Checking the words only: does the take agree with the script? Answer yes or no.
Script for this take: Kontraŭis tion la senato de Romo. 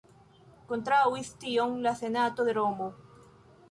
yes